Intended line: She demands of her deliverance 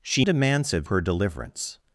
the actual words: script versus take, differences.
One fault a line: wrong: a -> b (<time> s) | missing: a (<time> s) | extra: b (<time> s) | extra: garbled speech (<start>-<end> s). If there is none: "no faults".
no faults